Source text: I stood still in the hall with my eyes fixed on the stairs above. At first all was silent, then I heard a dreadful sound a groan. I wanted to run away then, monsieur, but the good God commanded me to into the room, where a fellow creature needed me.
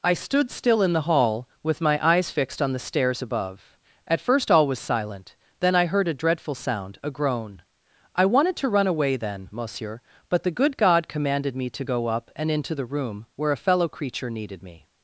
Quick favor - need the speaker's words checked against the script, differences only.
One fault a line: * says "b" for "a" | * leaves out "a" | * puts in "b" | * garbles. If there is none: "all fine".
* puts in "go up and"